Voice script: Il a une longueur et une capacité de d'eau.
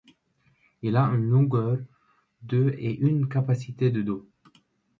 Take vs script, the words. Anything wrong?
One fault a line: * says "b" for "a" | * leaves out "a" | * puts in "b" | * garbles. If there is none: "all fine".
* puts in "de"